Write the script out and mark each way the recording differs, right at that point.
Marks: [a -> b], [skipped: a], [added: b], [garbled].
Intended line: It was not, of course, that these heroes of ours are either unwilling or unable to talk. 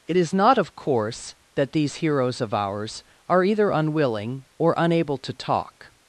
It [was -> is] not, of course, that these heroes of ours are either unwilling or unable to talk.